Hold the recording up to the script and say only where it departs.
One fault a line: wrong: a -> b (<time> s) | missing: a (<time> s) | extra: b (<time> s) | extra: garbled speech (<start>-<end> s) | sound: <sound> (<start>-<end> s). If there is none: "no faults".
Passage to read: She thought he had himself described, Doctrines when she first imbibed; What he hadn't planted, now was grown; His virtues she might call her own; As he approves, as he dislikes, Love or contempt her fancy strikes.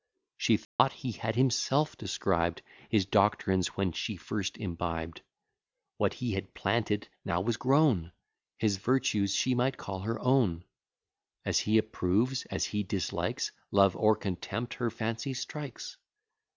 sound: dropout (0.6-0.8 s)
extra: His (2.9 s)
wrong: hadn't -> had (6.3 s)